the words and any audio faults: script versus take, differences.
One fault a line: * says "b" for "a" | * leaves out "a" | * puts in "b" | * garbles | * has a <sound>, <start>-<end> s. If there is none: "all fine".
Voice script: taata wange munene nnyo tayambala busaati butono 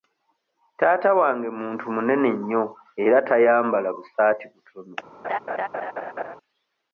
* puts in "muntu"
* puts in "era"
* has a laugh, 5.2-6.4 s